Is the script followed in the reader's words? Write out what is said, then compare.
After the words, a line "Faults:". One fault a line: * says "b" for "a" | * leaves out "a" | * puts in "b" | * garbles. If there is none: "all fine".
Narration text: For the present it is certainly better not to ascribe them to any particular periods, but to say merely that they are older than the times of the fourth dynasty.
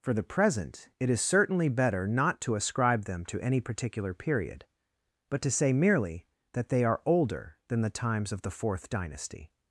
For the present it is certainly better not to ascribe them to any particular period, but to say merely that they are older than the times of the fourth dynasty.
Faults:
* says "period" for "periods"